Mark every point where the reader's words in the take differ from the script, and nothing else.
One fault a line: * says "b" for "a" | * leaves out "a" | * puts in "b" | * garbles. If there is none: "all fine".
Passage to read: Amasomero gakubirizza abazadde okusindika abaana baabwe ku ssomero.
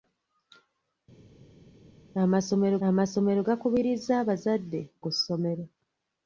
* puts in "amasomero"
* leaves out "okusindika abaana baabwe"